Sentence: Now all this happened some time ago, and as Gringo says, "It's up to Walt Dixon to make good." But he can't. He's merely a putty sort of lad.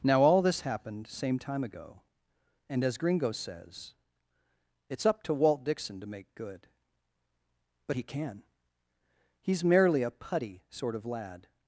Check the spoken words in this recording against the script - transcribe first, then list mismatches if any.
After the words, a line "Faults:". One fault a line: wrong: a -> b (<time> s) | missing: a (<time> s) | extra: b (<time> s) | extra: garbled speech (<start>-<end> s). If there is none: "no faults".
Now all this happened same time ago, and as Gringo says, "It's up to Walt Dixon to make good." But he can. He's merely a putty sort of lad.
Faults:
wrong: some -> same (1.1 s)
wrong: can't -> can (8.0 s)